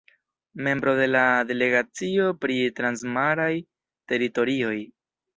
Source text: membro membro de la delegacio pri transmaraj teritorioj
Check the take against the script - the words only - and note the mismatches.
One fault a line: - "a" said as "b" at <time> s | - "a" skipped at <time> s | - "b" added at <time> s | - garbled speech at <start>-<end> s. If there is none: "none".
- "membro" skipped at 0.9 s